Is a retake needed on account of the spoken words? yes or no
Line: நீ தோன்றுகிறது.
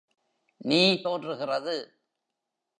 no